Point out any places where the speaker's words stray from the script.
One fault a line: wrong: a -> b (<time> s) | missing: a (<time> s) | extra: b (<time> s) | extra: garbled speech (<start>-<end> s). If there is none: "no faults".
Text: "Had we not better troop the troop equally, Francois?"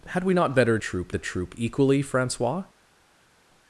no faults